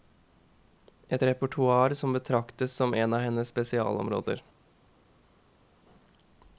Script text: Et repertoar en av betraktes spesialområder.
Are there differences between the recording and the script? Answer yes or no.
yes